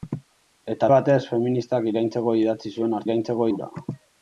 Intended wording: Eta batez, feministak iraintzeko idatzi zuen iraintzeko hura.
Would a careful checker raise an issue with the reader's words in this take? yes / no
no